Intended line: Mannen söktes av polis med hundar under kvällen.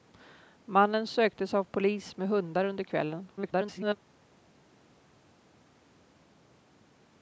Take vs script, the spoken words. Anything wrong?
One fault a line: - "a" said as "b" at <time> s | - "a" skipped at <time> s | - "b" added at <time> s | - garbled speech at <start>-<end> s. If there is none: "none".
- garbled speech at 3.4-4.0 s